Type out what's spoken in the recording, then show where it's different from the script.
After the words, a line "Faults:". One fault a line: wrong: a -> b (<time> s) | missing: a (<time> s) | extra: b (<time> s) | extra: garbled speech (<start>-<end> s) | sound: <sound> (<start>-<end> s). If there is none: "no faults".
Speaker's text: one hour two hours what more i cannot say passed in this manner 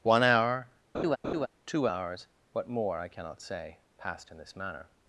one hour two hours what more i cannot say passed in this manner
Faults:
sound: laugh (0.9-1.5 s)